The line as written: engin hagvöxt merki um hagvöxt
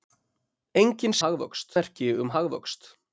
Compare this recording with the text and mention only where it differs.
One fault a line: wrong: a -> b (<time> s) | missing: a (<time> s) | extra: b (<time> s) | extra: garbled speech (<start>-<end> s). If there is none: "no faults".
no faults